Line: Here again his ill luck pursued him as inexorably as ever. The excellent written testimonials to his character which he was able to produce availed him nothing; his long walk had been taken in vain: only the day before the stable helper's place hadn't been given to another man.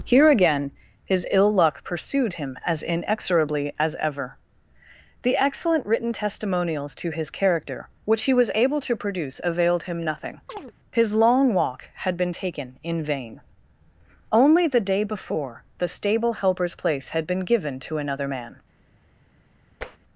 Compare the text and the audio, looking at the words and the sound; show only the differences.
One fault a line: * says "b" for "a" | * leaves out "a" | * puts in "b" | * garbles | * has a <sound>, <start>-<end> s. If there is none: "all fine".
* has a chirp, 10.5-10.7 s
* says "had" for "hadn't"
* has a tap, 19.8-20.0 s